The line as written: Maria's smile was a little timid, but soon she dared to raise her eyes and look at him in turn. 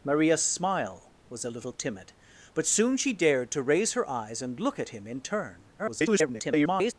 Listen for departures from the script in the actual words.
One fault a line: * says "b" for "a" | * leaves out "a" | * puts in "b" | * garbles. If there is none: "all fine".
* garbles